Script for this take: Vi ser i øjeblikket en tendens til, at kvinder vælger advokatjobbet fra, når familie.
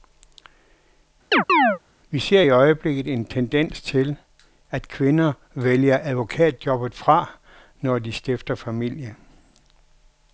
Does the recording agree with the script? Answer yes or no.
no